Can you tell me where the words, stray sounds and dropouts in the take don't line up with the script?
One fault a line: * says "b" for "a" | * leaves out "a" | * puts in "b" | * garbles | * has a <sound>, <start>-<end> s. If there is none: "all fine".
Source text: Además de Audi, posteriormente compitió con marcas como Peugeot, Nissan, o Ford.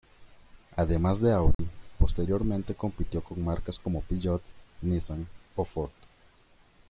* has a dropout, 1.5-1.6 s